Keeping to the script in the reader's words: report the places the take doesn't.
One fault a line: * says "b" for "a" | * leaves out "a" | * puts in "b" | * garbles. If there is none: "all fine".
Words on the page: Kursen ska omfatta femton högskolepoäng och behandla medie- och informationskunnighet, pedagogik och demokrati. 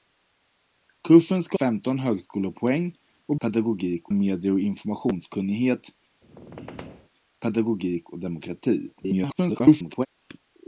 * leaves out "omfatta"
* says "pedagogik" for "behandla"
* garbles